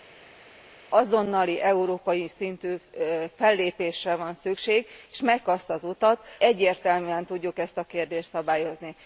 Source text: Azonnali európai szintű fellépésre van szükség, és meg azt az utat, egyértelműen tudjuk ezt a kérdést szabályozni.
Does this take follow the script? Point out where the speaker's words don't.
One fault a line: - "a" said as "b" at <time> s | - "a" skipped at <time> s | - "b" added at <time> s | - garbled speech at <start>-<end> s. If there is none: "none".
none